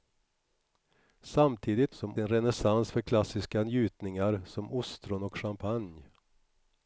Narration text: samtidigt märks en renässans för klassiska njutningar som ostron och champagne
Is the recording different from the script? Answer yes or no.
yes